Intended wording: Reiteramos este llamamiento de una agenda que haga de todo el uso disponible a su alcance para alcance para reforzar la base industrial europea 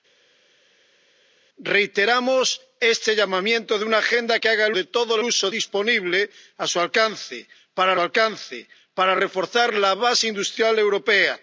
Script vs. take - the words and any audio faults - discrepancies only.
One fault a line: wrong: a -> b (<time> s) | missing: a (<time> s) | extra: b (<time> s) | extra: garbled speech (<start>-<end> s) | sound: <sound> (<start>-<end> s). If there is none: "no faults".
no faults